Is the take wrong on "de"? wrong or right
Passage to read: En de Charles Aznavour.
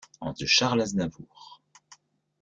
right